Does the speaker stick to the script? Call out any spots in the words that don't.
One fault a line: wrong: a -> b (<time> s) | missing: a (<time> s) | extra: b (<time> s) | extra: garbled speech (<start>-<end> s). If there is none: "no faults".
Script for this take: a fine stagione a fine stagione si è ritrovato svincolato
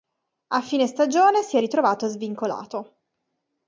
missing: a fine stagione (1.4 s)